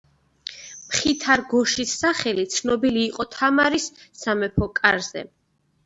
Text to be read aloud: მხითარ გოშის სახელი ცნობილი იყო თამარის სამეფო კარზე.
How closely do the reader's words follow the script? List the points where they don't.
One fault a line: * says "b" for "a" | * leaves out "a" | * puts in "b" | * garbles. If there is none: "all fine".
all fine